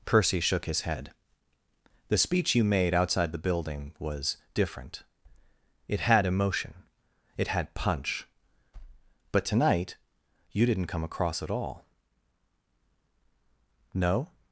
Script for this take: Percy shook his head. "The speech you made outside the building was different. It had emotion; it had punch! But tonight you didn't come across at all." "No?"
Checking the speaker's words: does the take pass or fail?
pass